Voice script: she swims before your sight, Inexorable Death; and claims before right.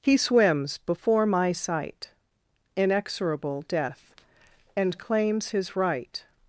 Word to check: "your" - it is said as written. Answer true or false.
false